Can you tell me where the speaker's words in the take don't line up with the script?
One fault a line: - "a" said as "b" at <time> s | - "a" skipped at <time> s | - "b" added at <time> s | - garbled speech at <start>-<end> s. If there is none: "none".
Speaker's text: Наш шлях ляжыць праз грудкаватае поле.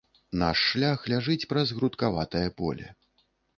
none